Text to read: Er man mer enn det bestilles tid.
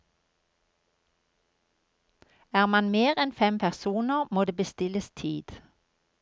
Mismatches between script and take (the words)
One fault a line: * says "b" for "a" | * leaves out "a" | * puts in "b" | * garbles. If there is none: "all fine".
* puts in "fem personer må"